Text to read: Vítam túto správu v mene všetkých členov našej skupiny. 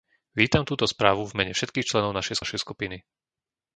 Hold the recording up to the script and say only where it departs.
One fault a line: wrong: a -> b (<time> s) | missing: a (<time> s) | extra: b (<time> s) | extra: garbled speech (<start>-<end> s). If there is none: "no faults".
extra: našej (2.4 s)